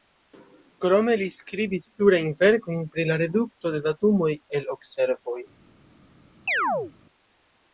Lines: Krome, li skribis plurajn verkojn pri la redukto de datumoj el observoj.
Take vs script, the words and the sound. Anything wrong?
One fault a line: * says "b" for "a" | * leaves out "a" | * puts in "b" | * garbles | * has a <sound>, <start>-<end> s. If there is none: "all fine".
* has a chirp, 6.5-6.9 s